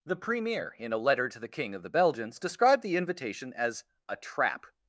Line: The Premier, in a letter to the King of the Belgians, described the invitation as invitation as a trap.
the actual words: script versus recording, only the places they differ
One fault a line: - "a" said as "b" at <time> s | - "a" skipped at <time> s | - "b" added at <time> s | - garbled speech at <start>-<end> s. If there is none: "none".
- "invitation as" skipped at 3.8 s